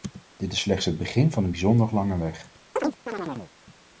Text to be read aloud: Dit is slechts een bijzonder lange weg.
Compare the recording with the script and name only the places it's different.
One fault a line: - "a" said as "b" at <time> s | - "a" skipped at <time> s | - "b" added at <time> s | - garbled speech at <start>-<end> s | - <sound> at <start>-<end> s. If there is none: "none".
- "het begin van" added at 0.9 s
- chirp at 2.8-3.5 s